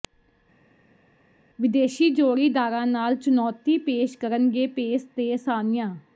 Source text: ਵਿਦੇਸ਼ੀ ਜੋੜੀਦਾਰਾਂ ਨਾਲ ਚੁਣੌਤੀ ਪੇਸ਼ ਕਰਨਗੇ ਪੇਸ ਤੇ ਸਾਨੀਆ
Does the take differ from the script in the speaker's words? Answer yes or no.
no